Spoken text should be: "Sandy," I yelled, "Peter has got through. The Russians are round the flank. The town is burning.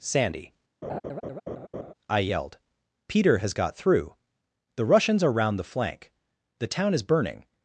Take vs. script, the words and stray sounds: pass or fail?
fail